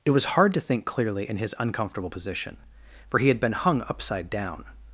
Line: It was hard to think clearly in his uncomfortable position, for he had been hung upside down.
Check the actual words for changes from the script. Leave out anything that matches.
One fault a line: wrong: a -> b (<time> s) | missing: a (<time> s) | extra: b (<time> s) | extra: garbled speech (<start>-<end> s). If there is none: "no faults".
no faults